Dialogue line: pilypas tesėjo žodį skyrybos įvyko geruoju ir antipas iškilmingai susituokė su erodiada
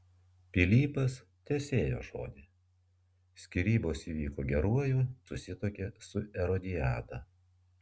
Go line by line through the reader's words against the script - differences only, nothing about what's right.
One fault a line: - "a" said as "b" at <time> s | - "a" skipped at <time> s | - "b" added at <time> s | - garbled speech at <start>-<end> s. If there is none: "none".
- "ir antipas iškilmingai" skipped at 5.0 s